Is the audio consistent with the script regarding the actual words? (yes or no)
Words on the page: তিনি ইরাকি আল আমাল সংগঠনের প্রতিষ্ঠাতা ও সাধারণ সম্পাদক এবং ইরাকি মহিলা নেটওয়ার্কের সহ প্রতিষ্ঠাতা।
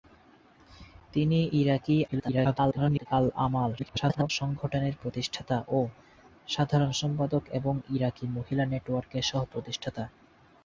no